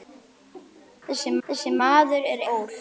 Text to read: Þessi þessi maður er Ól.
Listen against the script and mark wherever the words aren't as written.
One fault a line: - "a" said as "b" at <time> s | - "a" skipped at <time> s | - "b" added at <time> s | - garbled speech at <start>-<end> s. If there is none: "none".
none